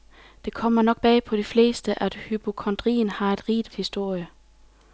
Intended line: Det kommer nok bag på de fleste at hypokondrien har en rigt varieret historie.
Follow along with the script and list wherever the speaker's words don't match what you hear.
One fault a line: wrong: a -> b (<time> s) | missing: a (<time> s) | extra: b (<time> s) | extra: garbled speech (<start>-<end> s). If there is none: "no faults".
missing: varieret (3.7 s)